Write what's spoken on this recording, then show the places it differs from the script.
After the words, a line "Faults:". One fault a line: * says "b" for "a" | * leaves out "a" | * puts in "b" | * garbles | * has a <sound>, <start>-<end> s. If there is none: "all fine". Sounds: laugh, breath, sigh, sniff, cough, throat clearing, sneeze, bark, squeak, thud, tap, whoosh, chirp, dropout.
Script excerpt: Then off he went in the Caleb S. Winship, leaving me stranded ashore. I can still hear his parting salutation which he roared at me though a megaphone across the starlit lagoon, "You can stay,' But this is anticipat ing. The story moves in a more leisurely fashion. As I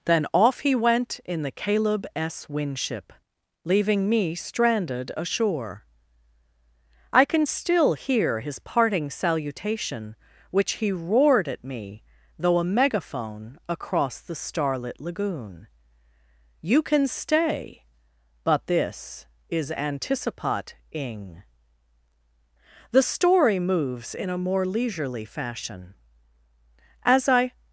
Then off he went in the Caleb S. Winship, leaving me stranded ashore. I can still hear his parting salutation which he roared at me though a megaphone across the starlit lagoon, "You can stay,' But this is anticipat ing. The story moves in a more leisurely fashion. As I
Faults:
all fine